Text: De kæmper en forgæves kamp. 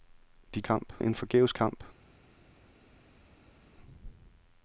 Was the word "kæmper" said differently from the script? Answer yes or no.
yes